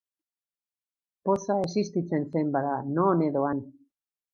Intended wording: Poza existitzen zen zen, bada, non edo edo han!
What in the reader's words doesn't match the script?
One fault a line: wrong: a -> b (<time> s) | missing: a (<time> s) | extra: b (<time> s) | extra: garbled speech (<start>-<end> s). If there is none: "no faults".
missing: zen (2.5 s)
missing: edo (3.5 s)